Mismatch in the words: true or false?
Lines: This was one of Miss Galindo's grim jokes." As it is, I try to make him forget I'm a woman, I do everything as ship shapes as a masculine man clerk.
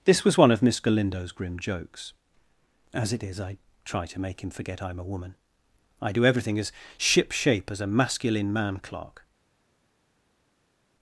true